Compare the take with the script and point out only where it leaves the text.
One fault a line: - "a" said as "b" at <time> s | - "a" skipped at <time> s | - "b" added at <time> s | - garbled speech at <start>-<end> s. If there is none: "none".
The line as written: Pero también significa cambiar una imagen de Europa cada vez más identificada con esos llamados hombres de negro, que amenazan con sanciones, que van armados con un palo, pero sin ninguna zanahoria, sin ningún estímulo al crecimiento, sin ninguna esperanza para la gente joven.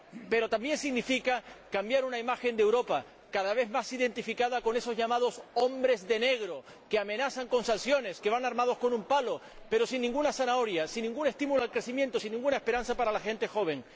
none